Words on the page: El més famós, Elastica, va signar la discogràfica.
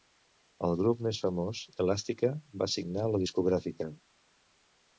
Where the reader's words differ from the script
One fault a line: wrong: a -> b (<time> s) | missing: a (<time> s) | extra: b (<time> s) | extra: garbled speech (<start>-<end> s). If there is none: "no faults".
extra: grup (0.8 s)